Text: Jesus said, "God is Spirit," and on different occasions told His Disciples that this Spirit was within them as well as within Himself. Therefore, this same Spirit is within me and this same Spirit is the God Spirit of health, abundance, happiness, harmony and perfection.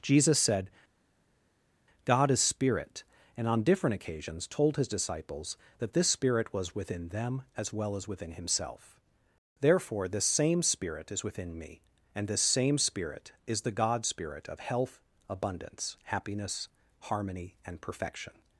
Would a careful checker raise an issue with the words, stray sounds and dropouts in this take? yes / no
no